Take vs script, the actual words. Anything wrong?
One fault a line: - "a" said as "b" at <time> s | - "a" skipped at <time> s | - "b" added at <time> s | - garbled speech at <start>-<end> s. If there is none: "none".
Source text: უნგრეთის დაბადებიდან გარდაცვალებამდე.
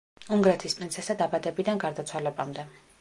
- "პრინცესა" added at 0.8 s